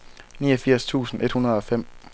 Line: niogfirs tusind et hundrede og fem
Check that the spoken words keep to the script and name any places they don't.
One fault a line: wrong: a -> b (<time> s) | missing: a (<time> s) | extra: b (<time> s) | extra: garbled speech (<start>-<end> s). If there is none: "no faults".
no faults